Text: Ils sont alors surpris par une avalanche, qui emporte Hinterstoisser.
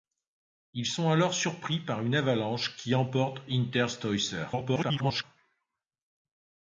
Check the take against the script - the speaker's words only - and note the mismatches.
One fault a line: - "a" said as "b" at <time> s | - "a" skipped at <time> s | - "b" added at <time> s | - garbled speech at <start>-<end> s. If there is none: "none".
- garbled speech at 4.5-5.2 s